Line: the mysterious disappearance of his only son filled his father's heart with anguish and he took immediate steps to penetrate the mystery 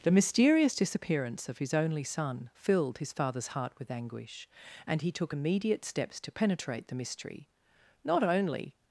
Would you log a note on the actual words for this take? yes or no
yes